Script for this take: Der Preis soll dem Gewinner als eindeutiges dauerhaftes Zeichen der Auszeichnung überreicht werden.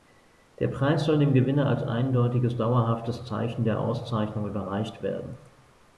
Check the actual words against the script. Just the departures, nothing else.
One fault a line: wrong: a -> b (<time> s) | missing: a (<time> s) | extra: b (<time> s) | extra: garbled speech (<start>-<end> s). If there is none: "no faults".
no faults